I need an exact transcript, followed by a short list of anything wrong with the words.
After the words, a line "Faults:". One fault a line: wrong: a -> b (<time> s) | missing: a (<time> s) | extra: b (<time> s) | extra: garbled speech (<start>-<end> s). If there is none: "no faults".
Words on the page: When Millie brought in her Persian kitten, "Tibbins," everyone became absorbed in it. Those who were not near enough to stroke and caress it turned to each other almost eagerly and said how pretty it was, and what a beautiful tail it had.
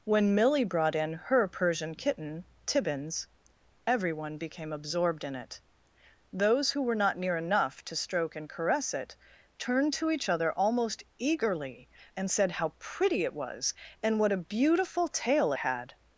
When Millie brought in her Persian kitten, "Tibbins," everyone became absorbed in it. Those who were not near enough to stroke and caress it turned to each other almost eagerly and said how pretty it was, and what a beautiful tail had.
Faults:
missing: it (15.5 s)